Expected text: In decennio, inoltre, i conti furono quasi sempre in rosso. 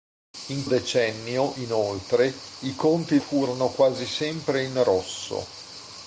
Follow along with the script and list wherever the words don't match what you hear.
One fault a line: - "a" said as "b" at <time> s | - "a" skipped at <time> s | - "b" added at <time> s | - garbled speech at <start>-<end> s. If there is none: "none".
none